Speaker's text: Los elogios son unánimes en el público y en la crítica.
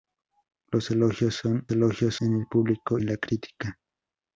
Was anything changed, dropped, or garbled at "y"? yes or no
yes